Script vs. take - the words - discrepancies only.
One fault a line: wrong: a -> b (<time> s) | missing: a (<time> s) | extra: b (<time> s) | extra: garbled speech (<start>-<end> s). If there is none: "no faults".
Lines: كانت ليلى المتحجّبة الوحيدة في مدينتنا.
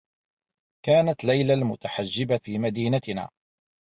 missing: الوحيدة (2.4 s)